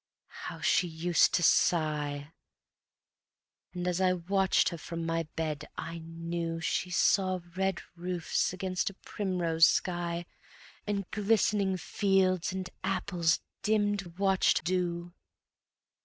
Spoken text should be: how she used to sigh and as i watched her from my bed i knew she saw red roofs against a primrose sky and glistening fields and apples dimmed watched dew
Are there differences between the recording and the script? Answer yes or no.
no